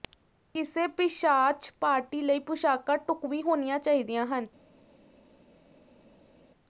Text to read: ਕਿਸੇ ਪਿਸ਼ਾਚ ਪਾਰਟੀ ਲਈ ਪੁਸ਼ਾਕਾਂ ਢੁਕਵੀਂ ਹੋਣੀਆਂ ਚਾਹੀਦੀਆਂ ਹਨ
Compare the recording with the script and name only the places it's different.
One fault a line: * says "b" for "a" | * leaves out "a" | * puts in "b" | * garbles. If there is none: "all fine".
all fine